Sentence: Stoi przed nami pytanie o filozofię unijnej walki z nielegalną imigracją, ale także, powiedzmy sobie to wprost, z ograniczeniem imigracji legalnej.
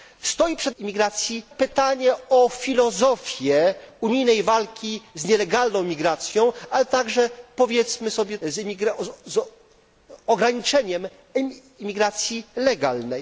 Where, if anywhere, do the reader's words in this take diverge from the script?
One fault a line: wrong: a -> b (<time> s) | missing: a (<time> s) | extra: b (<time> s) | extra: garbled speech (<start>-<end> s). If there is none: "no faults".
wrong: nami -> imigracji (0.8 s)
missing: to wprost (8.4 s)